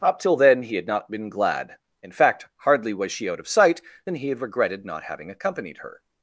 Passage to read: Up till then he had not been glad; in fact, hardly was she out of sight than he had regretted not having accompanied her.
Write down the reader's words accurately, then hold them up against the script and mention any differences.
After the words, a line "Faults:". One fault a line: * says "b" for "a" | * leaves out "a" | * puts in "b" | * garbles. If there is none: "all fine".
Up till then he had not been glad; in fact, hardly was she out of sight than he had regretted not having accompanied her.
Faults:
all fine